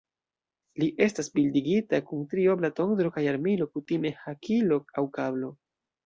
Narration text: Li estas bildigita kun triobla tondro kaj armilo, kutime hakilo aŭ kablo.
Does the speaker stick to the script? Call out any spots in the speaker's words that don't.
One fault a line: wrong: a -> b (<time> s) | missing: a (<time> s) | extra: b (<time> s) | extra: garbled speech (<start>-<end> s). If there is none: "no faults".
no faults